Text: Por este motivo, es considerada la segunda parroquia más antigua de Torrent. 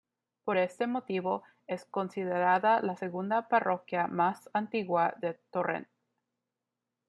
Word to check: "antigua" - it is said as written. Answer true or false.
true